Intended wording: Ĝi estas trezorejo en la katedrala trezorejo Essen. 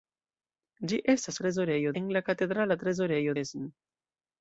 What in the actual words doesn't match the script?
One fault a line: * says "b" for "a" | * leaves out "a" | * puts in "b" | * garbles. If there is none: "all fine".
all fine